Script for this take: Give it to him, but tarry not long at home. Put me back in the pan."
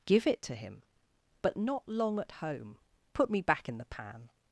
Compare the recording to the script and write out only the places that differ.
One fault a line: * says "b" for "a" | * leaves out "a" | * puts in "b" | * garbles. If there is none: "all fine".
* leaves out "tarry"